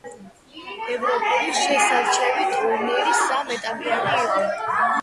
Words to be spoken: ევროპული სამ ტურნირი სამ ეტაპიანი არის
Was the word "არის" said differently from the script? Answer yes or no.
yes